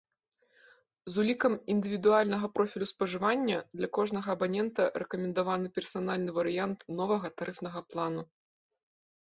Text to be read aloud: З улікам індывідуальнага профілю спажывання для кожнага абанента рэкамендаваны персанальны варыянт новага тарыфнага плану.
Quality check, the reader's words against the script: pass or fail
pass